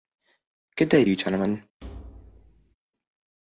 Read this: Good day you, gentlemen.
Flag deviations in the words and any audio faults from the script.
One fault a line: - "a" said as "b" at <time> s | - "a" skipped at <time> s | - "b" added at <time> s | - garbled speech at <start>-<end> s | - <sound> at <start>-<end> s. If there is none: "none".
- thud at 1.8-2.8 s